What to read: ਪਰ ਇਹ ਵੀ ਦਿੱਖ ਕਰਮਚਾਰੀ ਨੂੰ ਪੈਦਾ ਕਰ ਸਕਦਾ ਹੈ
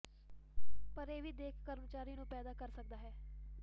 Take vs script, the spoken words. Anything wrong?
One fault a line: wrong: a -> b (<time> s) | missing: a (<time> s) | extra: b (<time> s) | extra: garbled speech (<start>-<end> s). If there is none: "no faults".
no faults